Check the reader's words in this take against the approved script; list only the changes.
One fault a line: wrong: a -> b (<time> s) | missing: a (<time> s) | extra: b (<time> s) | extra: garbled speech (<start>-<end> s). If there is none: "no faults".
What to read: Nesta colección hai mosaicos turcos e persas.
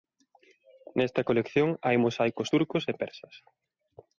no faults